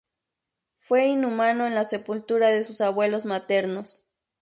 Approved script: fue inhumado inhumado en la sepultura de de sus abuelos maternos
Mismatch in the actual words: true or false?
true